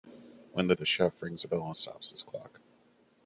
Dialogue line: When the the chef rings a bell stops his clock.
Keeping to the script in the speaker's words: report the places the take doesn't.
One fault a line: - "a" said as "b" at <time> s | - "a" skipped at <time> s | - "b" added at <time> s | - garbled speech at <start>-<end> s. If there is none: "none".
none